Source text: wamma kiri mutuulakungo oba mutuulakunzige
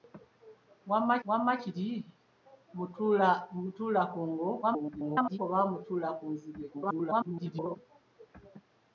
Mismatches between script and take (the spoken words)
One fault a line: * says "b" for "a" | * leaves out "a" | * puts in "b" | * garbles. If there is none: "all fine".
* puts in "wamma"
* garbles
* garbles